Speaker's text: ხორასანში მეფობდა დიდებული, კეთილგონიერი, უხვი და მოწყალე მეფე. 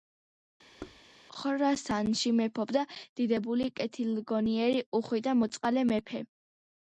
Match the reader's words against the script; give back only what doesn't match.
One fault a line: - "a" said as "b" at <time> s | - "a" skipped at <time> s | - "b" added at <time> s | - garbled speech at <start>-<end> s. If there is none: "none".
none